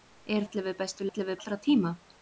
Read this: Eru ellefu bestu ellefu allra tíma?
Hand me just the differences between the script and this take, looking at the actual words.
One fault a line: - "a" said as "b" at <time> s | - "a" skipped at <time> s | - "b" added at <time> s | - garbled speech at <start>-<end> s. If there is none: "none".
none